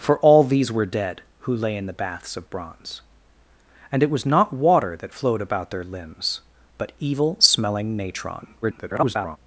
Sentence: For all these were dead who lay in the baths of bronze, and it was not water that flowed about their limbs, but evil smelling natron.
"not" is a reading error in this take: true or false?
false